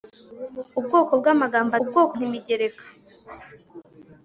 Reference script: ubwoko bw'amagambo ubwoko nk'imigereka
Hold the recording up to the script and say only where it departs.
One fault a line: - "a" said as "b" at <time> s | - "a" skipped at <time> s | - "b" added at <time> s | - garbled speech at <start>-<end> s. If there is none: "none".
none